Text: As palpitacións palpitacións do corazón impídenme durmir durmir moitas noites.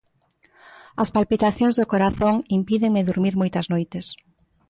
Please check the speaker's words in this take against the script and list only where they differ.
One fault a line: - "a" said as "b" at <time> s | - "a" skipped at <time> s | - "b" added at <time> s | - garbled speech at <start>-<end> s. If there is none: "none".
- "palpitacións" skipped at 1.8 s
- "durmir" skipped at 3.3 s